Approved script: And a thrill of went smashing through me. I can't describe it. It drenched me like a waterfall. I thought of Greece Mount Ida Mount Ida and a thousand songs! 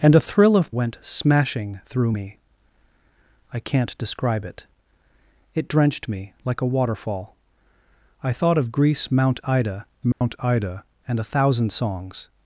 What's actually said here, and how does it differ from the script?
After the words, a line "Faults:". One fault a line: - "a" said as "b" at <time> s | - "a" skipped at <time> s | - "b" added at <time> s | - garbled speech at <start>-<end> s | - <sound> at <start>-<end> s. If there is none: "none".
And a thrill of went smashing through me. I can't describe it. It drenched me like a waterfall. I thought of Greece Mount Ida Mount Ida and a thousand songs!
Faults:
- dropout at 10.1-10.2 s